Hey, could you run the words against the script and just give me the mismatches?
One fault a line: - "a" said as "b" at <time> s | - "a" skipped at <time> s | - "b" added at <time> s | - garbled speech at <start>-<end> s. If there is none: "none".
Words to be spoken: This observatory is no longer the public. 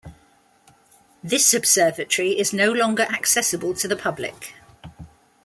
- "accessible to" added at 3.1 s